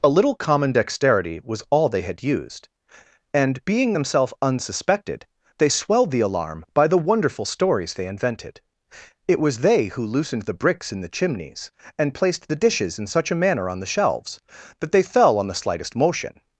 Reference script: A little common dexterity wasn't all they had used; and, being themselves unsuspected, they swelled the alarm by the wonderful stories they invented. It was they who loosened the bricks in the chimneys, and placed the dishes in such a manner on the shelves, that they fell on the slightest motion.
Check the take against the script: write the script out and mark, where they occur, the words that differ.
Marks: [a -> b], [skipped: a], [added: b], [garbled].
A little common dexterity [wasn't -> was] all they had used; and, being themselves unsuspected, they swelled the alarm by the wonderful stories they invented. It was they who loosened the bricks in the chimneys, and placed the dishes in such a manner on the shelves, that they fell on the slightest motion.